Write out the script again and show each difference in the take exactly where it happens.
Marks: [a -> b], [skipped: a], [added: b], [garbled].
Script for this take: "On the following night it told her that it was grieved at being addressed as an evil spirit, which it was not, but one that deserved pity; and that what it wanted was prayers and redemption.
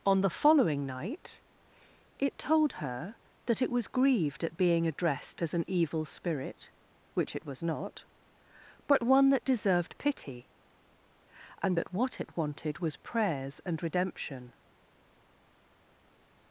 "On the following night it told her that it was grieved at being addressed as an evil spirit, which it was not, but one that deserved pity; and that what it wanted was prayers and redemption.